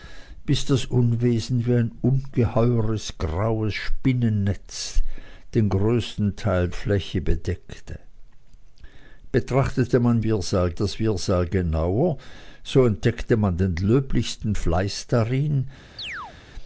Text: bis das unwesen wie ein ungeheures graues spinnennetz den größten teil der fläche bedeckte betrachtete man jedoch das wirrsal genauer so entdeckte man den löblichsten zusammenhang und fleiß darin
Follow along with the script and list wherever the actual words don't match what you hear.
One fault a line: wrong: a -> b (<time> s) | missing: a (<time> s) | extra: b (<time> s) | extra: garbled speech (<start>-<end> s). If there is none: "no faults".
missing: der (6.7 s)
wrong: jedoch -> wirrsal (10.3 s)
missing: zusammenhang und (14.5 s)